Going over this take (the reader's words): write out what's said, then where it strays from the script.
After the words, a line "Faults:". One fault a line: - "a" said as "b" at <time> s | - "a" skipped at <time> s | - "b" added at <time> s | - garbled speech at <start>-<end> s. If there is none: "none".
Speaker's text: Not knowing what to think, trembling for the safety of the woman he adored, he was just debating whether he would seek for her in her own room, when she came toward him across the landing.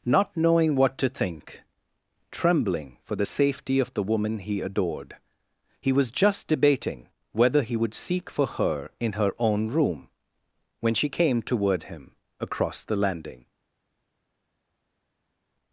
Not knowing what to think, trembling for the safety of the woman he adored, he was just debating whether he would seek for her in her own room, when she came toward him across the landing.
Faults:
none